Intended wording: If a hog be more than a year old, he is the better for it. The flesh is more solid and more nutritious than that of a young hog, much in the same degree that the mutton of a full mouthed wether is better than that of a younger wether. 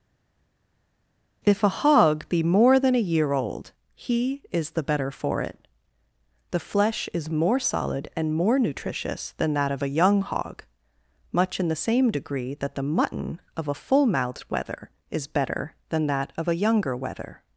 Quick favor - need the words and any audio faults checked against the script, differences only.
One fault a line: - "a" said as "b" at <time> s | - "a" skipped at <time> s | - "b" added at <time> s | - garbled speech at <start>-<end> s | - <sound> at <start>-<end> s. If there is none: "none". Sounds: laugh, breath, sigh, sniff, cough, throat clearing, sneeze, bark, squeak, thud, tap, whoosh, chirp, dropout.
none